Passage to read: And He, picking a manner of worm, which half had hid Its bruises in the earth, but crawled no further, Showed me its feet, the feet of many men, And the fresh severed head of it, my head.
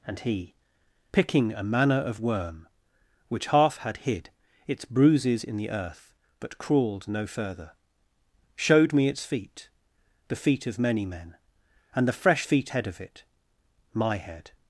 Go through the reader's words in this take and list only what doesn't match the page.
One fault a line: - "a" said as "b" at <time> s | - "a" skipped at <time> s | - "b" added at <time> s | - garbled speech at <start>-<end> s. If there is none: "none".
- "severed" said as "feet" at 12.4 s